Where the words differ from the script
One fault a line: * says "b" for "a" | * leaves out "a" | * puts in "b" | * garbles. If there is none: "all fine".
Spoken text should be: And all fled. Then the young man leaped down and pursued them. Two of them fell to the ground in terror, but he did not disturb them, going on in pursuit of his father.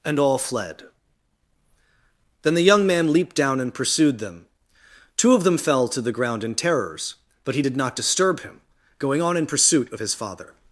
* says "terrors" for "terror"
* says "him" for "them"